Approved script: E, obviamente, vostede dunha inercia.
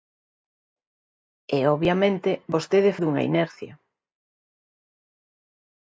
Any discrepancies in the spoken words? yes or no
no